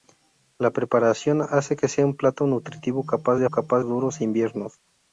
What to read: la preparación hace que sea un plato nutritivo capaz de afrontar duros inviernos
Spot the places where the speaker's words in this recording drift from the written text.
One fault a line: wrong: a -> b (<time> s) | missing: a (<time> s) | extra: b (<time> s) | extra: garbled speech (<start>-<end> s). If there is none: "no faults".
wrong: afrontar -> capaz (3.5 s)